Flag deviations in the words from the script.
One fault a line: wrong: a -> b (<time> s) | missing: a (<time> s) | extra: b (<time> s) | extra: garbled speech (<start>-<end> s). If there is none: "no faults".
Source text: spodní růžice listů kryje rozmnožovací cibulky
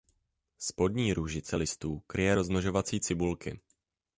no faults